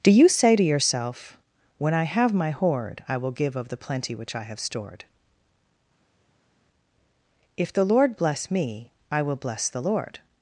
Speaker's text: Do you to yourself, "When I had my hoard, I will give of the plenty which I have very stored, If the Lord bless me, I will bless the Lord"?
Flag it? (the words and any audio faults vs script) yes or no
yes